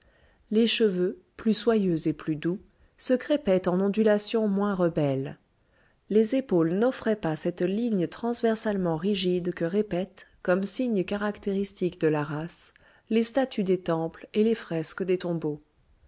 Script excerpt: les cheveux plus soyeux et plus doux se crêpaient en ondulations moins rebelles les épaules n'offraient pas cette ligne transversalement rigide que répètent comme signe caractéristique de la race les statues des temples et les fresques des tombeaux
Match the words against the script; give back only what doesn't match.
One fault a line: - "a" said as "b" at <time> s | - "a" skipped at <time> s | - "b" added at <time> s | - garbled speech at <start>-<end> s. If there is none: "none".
none